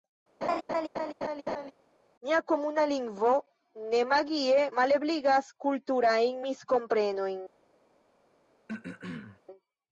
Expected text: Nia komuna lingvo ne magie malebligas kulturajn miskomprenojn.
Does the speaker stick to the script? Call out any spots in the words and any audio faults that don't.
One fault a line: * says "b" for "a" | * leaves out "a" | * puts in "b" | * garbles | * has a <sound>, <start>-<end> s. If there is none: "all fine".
* has a laugh, 0.4-1.7 s
* has a throat clearing, 8.7-9.4 s